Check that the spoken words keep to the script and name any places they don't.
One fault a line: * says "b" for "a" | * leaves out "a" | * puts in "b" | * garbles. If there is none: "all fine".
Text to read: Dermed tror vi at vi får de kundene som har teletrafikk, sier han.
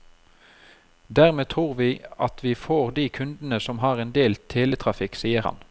* puts in "en del"